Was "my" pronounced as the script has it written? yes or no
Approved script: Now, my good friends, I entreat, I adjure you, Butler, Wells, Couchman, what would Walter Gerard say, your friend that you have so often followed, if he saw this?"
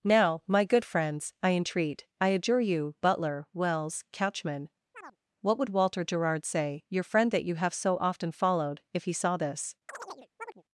yes